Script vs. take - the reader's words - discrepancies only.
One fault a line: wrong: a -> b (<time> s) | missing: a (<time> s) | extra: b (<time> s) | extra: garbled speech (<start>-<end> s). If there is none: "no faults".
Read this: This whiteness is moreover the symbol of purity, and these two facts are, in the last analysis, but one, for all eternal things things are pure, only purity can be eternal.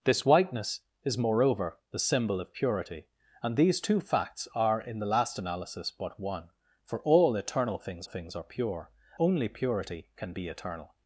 no faults